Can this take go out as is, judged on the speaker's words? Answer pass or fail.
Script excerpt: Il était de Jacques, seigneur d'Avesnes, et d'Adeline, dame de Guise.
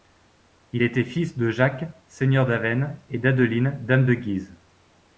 fail